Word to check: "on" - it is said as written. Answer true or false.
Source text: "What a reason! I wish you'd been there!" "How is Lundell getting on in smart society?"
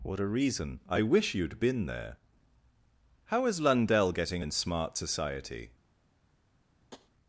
false